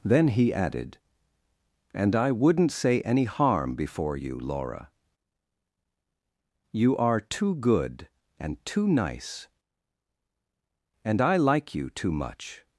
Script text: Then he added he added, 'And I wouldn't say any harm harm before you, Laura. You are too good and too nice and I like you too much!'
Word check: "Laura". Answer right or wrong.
right